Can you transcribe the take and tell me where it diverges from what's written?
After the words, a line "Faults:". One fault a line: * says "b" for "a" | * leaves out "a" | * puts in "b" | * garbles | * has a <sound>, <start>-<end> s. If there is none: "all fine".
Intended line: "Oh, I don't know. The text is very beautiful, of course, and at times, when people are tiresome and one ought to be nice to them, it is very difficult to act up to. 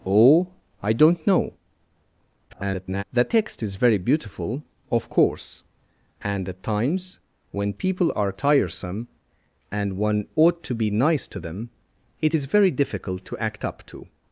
"Oh, I don't know. [garbled] The text is very beautiful, of course, and at times, when people are tiresome and one ought to be nice to them, it is very difficult to act up to.
Faults:
* garbles